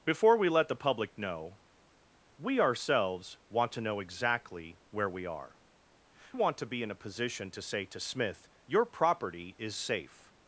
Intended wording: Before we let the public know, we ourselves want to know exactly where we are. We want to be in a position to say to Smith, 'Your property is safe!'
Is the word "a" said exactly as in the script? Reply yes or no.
yes